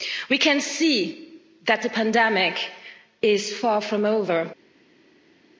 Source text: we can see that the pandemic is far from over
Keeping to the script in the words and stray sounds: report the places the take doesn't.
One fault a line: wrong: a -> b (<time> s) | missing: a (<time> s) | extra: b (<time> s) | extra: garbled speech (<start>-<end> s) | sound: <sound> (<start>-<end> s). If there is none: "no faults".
no faults